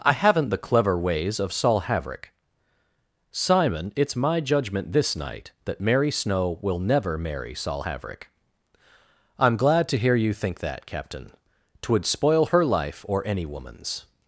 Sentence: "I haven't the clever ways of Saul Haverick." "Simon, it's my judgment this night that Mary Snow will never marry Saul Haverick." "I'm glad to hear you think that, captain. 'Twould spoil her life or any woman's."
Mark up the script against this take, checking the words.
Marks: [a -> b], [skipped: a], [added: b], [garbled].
"I haven't the clever ways of Saul Haverick." "Simon, it's my judgment this night that Mary Snow will never marry Saul Haverick." "I'm glad to hear you think that, captain. 'Twould spoil her life or any woman's."